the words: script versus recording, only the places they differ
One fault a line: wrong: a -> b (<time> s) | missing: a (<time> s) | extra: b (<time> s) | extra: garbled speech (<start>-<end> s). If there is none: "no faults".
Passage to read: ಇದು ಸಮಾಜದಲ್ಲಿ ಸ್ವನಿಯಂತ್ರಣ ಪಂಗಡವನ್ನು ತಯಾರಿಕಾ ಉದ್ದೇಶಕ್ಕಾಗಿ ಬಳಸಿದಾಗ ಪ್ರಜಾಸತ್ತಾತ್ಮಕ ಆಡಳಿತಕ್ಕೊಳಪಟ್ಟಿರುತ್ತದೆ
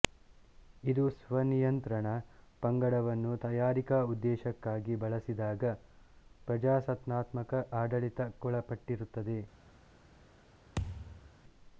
missing: ಸಮಾಜದಲ್ಲಿ (1.0 s)